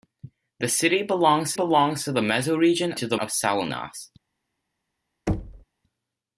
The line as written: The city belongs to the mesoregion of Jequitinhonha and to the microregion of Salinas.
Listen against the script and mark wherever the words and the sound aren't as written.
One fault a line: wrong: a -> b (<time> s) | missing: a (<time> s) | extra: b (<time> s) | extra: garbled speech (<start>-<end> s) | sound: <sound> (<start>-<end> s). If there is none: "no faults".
extra: belongs (1.5 s)
missing: of Jequitinhonha and (2.9 s)
missing: microregion (3.2 s)
sound: thud (5.3-5.6 s)